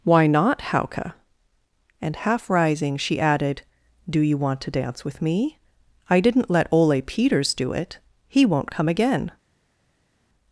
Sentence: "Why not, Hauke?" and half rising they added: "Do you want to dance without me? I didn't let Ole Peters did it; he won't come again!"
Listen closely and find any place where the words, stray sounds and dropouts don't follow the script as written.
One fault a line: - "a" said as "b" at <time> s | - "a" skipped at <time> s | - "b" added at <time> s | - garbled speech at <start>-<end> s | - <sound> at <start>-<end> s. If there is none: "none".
- "they" said as "she" at 3.0 s
- "without" said as "with" at 5.0 s
- "did" said as "do" at 7.5 s